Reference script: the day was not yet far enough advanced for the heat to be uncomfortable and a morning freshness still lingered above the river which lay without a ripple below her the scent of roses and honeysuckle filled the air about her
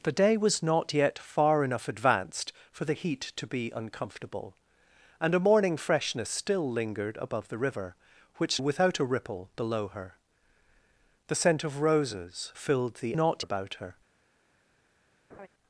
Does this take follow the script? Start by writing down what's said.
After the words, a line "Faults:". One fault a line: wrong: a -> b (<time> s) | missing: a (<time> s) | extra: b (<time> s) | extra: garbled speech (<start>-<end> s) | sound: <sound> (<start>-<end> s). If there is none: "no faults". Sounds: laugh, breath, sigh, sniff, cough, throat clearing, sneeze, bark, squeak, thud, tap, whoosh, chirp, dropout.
the day was not yet far enough advanced for the heat to be uncomfortable and a morning freshness still lingered above the river which without a ripple below her the scent of roses filled the not about her
Faults:
missing: lay (8.6 s)
missing: and honeysuckle (12.5 s)
wrong: air -> not (13.1 s)
sound: laugh (15.3-15.5 s)